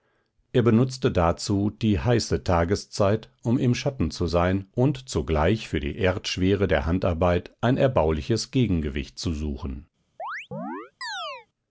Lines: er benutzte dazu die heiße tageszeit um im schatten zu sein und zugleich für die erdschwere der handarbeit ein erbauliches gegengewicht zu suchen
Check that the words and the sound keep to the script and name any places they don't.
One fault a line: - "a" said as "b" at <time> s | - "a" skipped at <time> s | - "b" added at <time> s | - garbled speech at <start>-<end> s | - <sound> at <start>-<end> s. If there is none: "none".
- chirp at 10.2-11.5 s